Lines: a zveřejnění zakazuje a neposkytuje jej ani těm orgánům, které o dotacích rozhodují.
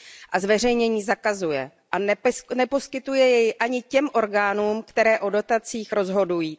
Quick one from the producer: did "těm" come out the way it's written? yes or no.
yes